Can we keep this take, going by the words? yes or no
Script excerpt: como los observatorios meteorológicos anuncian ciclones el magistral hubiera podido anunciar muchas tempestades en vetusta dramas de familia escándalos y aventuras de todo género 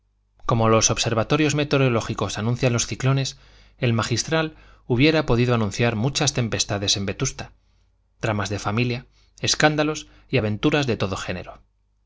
no